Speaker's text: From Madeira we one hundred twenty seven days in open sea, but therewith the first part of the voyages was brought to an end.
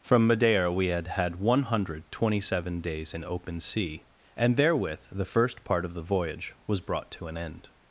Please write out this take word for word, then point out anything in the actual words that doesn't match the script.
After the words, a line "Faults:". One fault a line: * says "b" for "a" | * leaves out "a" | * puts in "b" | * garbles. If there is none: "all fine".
From Madeira we had had one hundred twenty seven days in open sea, and therewith the first part of the voyage was brought to an end.
Faults:
* puts in "had had"
* says "and" for "but"
* says "voyage" for "voyages"